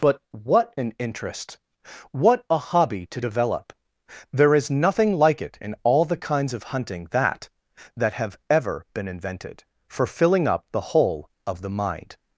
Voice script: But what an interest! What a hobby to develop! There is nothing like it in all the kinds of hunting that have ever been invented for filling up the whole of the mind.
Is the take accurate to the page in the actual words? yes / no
no